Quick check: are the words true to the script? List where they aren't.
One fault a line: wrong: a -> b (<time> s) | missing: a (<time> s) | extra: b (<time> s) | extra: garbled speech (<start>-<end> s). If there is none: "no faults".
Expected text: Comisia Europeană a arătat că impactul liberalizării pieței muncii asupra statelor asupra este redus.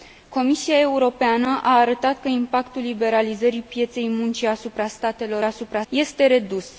no faults